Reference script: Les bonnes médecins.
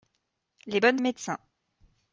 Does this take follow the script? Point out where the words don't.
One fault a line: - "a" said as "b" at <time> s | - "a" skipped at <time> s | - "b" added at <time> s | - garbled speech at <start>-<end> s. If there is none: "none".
none